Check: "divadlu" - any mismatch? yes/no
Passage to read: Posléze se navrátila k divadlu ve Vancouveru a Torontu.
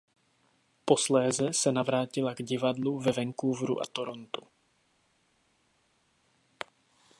no